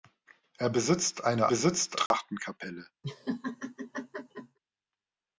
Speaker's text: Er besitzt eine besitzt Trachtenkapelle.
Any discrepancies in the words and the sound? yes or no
yes